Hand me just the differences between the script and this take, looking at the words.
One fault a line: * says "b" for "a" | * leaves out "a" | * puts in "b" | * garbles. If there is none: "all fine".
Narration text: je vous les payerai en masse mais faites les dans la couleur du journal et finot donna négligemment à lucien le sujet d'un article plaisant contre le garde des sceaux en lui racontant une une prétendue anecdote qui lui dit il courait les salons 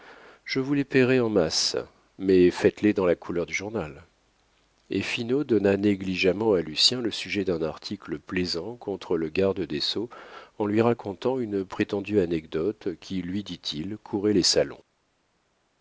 * leaves out "une"